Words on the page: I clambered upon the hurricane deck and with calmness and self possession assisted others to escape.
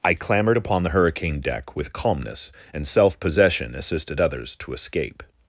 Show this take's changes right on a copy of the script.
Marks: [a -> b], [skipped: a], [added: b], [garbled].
I clambered upon the hurricane deck [skipped: and] with calmness and self possession assisted others to escape.